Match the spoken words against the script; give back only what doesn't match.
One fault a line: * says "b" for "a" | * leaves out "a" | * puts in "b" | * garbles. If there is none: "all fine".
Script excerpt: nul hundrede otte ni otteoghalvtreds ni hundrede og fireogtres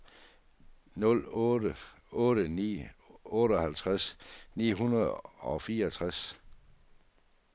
* says "otte" for "hundrede"